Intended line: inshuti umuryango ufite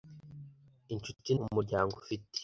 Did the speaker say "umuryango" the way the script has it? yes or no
yes